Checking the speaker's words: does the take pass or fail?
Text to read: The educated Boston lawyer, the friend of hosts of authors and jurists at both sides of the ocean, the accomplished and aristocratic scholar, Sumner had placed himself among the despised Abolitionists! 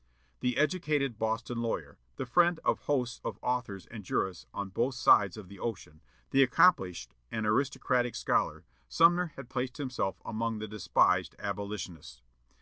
fail